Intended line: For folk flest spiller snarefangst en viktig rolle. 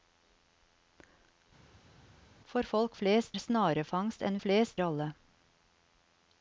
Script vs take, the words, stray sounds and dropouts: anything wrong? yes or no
yes